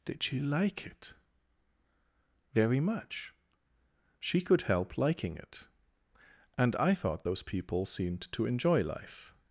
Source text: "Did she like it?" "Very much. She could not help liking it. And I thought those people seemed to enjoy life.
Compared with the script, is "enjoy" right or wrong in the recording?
right